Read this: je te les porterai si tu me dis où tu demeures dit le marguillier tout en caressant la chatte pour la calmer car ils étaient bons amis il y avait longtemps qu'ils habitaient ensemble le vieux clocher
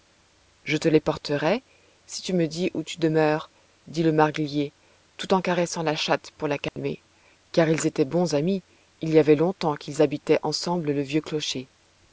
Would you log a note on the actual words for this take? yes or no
no